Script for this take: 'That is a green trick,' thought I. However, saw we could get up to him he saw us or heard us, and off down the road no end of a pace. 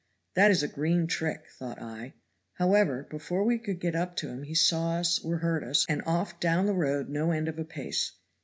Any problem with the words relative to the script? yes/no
yes